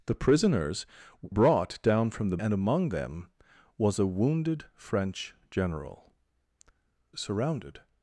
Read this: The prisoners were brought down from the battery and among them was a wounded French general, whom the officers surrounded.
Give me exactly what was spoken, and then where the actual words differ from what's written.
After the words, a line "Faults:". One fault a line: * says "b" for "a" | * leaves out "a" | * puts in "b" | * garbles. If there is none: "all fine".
The prisoners brought down from the and among them was a wounded French general, surrounded.
Faults:
* leaves out "were"
* leaves out "battery"
* leaves out "whom the officers"